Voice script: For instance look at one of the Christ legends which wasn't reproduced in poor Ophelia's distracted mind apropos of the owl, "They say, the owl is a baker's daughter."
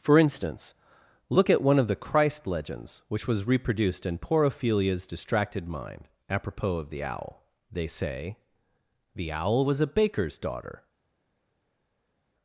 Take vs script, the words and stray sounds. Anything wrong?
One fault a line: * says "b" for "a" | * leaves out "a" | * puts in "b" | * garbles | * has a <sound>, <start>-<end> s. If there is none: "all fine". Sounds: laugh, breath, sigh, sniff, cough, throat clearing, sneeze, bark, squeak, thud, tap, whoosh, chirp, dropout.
* says "was" for "wasn't"
* says "was" for "is"